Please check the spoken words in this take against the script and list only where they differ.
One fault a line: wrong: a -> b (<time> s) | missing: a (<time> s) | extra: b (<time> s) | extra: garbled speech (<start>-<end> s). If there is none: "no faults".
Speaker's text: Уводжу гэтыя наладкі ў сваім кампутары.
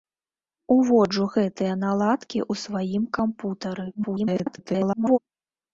extra: garbled speech (3.9-5.2 s)